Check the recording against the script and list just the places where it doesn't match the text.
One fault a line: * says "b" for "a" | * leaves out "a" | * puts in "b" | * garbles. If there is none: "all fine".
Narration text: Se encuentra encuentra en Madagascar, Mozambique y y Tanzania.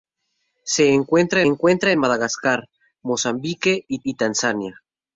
all fine